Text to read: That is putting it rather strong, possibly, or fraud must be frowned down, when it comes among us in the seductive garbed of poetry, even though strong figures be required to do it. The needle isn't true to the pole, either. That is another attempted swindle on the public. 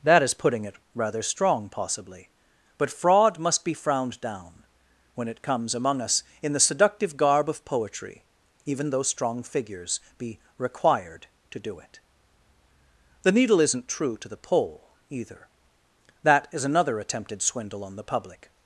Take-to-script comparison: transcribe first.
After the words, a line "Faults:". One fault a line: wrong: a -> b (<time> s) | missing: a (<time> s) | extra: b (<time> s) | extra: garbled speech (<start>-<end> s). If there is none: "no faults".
That is putting it rather strong, possibly, but fraud must be frowned down, when it comes among us in the seductive garb of poetry, even though strong figures be required to do it. The needle isn't true to the pole, either. That is another attempted swindle on the public.
Faults:
wrong: or -> but (2.8 s)
wrong: garbed -> garb (7.2 s)